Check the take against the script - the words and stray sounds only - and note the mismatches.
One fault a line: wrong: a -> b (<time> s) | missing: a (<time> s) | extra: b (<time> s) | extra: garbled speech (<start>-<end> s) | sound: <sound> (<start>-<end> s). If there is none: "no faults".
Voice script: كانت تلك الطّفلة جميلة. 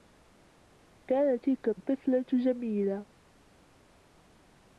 no faults